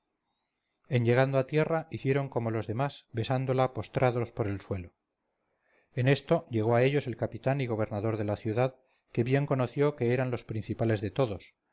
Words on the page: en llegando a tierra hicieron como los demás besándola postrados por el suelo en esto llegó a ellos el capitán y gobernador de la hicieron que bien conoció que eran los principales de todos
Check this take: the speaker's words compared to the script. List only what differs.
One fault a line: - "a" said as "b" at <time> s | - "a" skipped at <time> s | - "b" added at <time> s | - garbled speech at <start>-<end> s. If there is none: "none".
- "hicieron" said as "ciudad" at 8.4 s